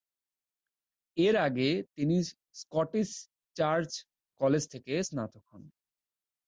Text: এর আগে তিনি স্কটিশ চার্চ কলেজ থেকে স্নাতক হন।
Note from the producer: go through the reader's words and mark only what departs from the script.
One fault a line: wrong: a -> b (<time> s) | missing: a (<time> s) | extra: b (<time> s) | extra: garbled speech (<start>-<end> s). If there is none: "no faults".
no faults